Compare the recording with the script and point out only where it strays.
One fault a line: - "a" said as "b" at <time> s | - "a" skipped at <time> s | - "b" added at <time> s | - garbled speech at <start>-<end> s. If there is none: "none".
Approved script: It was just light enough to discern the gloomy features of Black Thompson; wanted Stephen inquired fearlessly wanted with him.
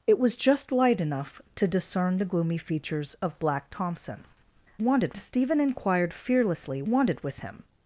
none